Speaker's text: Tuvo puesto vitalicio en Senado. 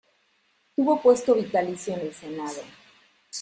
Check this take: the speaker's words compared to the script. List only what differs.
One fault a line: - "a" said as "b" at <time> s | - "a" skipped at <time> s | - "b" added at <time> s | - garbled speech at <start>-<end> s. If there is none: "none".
- "el" added at 2.0 s